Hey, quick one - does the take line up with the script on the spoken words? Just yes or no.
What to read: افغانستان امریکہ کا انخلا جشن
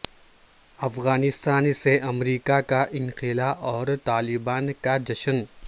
no